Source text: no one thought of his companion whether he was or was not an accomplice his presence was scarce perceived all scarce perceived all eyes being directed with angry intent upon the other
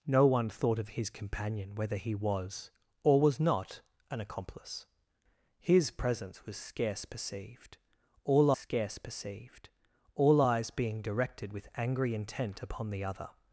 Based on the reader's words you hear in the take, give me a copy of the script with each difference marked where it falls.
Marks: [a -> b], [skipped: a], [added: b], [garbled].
no one thought of his companion whether he was or was not an accomplice his presence was scarce perceived all scarce perceived all eyes being directed with angry intent upon the other